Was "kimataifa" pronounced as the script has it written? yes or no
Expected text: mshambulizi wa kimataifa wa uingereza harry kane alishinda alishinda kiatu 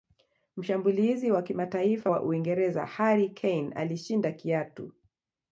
yes